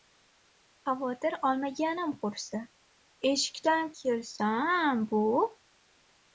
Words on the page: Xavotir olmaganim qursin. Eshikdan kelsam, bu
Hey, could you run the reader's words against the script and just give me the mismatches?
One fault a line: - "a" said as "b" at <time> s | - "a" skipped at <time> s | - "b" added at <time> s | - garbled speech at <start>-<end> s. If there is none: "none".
none